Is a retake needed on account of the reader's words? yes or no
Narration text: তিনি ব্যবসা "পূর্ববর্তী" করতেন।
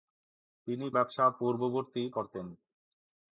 no